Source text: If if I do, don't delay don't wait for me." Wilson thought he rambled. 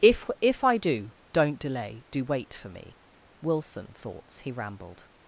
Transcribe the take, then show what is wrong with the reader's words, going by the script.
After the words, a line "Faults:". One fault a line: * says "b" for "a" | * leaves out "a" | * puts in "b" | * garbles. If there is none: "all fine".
If if I do, don't delay do wait for me." Wilson thoughts he rambled.
Faults:
* says "do" for "don't"
* says "thoughts" for "thought"